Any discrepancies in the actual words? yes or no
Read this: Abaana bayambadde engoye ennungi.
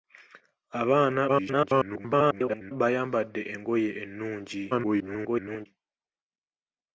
yes